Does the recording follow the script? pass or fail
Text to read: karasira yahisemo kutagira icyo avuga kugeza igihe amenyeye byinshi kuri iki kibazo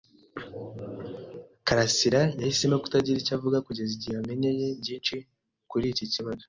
pass